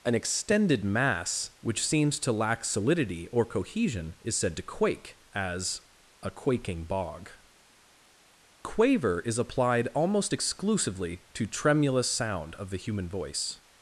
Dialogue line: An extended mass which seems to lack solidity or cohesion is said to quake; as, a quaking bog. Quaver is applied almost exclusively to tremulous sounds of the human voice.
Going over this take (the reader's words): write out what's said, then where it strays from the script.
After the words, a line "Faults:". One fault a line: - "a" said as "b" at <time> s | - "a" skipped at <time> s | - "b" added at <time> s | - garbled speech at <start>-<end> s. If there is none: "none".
An extended mass which seems to lack solidity or cohesion is said to quake; as, a quaking bog. Quaver is applied almost exclusively to tremulous sound of the human voice.
Faults:
- "sounds" said as "sound" at 12.1 s